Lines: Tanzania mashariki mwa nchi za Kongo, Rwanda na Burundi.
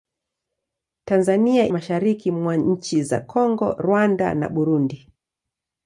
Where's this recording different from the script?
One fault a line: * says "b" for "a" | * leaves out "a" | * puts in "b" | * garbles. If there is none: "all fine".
all fine